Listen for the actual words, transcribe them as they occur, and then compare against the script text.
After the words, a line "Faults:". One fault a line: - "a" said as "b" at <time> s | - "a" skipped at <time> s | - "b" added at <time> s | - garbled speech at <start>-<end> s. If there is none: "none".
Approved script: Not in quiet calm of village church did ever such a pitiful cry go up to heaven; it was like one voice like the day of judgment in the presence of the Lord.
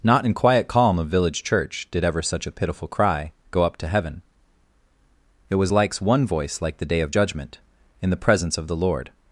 Not in quiet calm of village church did ever such a pitiful cry go up to heaven; it was likes one voice like the day of judgment in the presence of the Lord.
Faults:
- "like" said as "likes" at 5.7 s